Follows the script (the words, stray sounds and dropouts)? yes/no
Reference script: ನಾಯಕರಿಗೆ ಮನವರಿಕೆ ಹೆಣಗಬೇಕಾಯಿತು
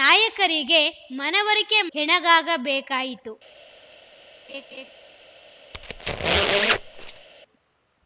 no